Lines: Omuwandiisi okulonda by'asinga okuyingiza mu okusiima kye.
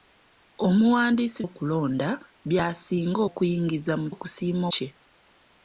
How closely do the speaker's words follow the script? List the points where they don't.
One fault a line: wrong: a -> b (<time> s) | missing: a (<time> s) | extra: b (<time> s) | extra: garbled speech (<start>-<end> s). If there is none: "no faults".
no faults